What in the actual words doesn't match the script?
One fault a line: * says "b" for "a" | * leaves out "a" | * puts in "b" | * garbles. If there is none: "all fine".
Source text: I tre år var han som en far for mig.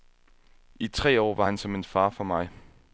all fine